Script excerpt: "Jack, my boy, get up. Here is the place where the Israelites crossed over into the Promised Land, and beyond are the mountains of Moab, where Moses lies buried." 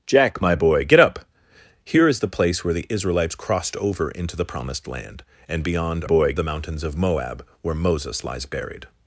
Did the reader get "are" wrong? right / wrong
wrong